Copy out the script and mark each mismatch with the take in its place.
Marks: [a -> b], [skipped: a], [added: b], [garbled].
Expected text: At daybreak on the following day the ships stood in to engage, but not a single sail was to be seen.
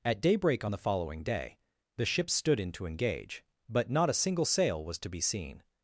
At daybreak on the following day the ships stood in to engage, but not a single sail was to be seen.